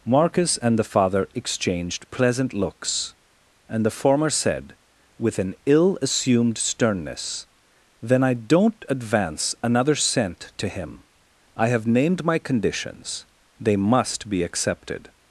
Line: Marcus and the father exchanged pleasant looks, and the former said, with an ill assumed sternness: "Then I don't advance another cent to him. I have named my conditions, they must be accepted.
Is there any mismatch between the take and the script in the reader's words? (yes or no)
no